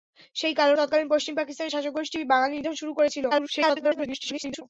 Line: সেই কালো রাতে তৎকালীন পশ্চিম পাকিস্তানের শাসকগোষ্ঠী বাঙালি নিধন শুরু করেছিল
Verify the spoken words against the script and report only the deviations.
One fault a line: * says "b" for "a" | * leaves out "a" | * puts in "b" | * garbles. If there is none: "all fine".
* leaves out "রাতে"
* garbles